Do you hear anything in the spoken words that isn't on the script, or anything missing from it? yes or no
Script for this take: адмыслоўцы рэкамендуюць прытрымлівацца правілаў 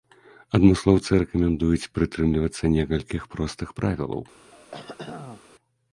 yes